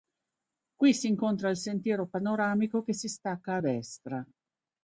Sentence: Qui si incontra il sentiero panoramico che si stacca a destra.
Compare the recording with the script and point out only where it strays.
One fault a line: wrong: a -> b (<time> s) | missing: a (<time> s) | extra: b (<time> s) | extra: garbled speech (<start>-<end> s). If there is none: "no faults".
no faults